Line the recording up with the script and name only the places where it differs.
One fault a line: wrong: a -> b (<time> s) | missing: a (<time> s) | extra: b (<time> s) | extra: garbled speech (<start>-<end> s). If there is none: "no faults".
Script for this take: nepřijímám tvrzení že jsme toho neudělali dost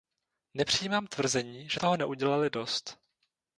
missing: jsme (1.8 s)